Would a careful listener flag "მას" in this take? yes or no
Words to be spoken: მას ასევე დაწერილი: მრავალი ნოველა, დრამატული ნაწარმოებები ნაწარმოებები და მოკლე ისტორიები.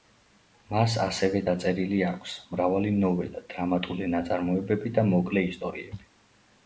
no